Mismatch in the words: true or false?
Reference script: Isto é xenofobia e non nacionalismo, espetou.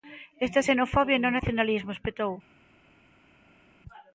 false